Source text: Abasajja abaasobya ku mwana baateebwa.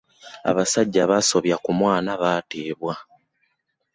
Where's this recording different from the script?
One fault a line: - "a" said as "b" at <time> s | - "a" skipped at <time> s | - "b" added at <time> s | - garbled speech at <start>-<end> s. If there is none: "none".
none